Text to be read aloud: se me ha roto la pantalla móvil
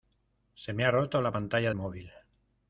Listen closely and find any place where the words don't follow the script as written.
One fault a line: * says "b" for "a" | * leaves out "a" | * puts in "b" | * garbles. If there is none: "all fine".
all fine